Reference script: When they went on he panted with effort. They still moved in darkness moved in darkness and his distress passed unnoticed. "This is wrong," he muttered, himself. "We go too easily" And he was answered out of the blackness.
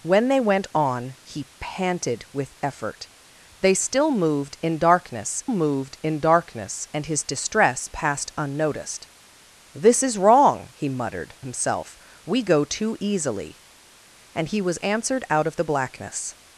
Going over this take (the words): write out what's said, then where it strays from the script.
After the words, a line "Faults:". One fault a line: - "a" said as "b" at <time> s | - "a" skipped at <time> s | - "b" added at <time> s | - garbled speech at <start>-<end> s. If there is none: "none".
When they went on he panted with effort. They still moved in darkness moved in darkness and his distress passed unnoticed. "This is wrong," he muttered, himself. "We go too easily" And he was answered out of the blackness.
Faults:
none